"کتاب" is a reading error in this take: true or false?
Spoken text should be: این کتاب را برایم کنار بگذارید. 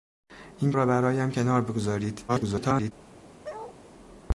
true